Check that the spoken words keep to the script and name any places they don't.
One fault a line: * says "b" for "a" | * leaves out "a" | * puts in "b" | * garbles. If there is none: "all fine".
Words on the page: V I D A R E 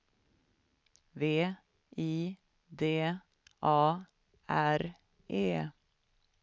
all fine